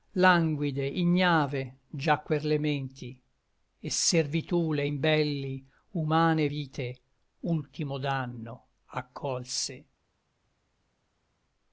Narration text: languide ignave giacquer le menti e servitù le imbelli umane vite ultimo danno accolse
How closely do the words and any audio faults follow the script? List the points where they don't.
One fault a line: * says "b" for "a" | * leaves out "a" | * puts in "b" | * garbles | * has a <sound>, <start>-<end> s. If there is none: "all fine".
all fine